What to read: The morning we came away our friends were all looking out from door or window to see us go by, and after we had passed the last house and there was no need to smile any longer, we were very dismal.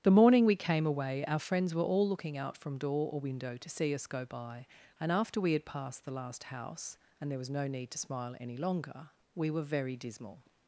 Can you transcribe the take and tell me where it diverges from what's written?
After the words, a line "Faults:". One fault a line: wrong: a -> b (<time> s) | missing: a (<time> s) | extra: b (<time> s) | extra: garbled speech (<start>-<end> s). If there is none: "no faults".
The morning we came away our friends were all looking out from door or window to see us go by, and after we had passed the last house and there was no need to smile any longer, we were very dismal.
Faults:
no faults